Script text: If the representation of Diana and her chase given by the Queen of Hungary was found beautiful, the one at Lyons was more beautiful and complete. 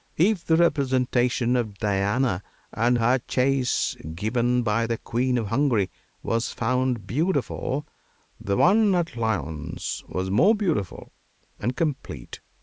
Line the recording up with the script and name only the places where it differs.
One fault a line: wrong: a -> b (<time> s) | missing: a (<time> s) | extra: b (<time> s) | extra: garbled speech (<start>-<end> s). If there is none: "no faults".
no faults